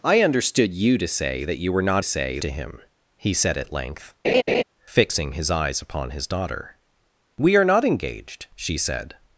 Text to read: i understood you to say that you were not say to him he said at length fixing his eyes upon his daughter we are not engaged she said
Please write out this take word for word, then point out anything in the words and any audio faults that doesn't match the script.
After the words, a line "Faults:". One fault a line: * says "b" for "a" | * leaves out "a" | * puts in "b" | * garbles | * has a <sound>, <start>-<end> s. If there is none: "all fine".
i understood you to say that you were not say to him he said at length fixing his eyes upon his daughter we are not engaged she said
Faults:
* has a laugh, 4.2-4.6 s